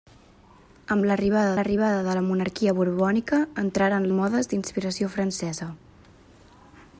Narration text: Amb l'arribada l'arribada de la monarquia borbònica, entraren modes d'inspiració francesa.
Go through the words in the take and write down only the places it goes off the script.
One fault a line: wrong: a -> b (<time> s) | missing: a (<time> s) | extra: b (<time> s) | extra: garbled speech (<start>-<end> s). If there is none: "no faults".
no faults